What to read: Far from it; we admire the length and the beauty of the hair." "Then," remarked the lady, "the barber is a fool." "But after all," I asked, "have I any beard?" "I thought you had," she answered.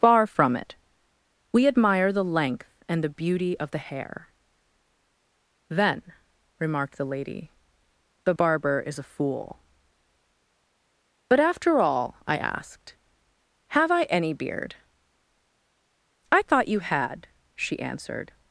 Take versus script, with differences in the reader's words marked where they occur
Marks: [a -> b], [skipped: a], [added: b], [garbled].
Far from it; we admire the length and the beauty of the hair." "Then," remarked the lady, "the barber is a fool." "But after all," I asked, "have I any beard?" "I thought you had," she answered.